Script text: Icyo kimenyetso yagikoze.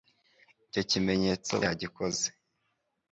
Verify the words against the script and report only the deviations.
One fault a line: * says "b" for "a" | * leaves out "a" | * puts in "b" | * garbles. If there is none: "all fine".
all fine